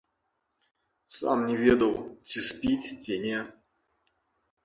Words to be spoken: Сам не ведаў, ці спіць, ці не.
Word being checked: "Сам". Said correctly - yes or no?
yes